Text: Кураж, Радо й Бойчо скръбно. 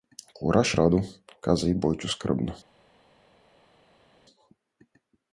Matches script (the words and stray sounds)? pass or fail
fail